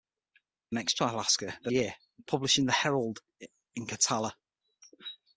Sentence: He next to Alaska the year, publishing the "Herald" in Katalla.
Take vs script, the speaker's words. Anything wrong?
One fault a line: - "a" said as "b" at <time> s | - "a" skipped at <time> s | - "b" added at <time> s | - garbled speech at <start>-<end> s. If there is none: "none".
none